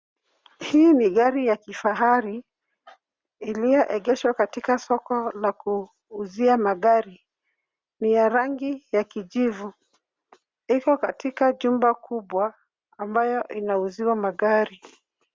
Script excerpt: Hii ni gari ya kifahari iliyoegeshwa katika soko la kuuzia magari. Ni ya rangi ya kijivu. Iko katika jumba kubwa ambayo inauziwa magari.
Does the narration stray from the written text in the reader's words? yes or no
no